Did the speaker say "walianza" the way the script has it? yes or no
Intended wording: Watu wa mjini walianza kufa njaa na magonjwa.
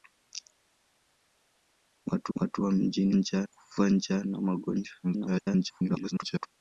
no